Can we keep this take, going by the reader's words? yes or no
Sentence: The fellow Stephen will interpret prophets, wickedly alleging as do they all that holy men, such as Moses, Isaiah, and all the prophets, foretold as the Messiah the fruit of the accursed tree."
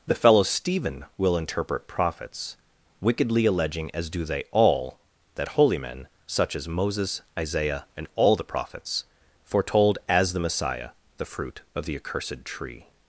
yes